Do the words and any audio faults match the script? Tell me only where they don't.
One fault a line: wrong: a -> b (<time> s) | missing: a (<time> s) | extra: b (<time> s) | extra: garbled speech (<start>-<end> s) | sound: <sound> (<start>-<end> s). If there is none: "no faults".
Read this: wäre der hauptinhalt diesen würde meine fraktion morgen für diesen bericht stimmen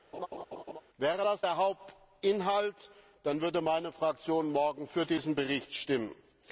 sound: laugh (0.1-0.8 s)
extra: das (1.2 s)
wrong: diesen -> dann (3.2 s)